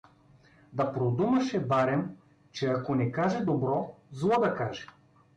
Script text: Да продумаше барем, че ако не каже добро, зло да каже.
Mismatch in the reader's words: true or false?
false